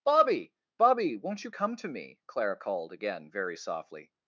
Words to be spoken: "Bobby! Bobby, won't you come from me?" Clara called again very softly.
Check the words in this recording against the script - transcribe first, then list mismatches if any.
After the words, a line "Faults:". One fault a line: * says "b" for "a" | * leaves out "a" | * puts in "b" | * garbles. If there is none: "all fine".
"Bobby! Bobby, won't you come to me?" Clara called again very softly.
Faults:
* says "to" for "from"